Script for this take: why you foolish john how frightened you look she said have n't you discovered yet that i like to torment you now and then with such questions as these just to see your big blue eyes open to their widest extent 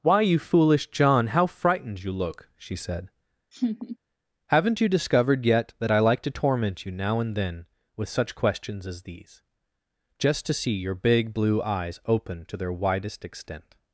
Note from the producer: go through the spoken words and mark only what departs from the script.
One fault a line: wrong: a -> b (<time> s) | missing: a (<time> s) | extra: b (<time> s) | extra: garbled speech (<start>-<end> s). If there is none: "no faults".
no faults